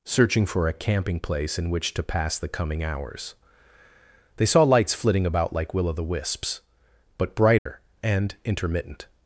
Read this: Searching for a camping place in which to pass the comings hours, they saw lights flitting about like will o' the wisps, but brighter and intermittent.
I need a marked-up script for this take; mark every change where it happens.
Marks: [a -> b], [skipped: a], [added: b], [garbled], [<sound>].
Searching for a camping place in which to pass the [comings -> coming] hours, they saw lights flitting about like will o' the wisps, but brighter [dropout] and intermittent.